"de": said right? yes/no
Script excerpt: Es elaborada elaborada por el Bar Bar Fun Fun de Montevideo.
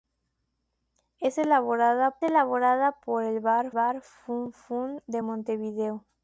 yes